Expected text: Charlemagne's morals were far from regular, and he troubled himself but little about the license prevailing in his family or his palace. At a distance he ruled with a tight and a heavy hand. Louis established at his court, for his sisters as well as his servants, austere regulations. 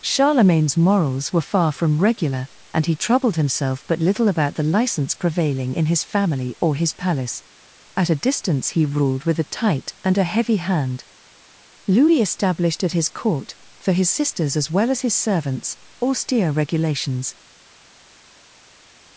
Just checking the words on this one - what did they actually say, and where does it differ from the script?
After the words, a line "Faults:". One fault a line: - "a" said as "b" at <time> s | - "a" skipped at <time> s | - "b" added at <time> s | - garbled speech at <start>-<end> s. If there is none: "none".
Charlemagne's morals were far from regular, and he troubled himself but little about the license prevailing in his family or his palace. At a distance he ruled with a tight and a heavy hand. Louis established at his court, for his sisters as well as his servants, austere regulations.
Faults:
none